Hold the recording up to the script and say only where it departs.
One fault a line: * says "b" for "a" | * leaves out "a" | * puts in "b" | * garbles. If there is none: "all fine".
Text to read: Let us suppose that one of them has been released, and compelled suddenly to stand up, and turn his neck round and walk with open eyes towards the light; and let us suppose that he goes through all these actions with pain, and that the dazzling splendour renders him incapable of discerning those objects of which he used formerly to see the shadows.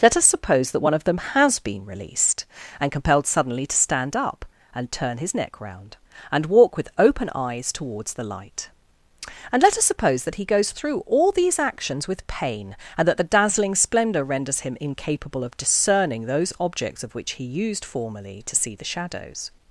all fine